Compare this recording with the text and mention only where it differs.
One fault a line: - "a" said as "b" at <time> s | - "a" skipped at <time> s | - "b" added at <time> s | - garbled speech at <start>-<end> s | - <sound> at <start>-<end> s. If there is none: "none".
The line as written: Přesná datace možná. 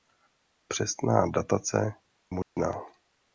- dropout at 2.4-2.6 s